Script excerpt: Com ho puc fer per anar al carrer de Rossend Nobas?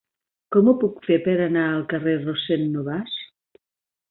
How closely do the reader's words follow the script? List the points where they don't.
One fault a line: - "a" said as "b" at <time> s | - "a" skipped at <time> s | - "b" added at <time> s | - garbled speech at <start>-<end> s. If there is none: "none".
none